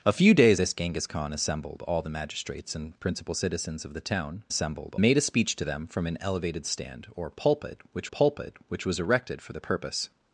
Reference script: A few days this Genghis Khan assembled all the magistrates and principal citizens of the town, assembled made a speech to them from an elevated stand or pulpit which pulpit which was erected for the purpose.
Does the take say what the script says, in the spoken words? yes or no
yes